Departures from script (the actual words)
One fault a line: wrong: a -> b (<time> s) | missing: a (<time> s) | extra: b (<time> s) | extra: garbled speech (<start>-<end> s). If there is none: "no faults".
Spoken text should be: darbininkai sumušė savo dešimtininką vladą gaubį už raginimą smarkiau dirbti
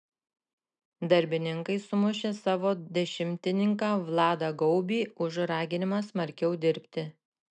no faults